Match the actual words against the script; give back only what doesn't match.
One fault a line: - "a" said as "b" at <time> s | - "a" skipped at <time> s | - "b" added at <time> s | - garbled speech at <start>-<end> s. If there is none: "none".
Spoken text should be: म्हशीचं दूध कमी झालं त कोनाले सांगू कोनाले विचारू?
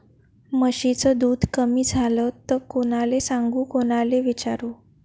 none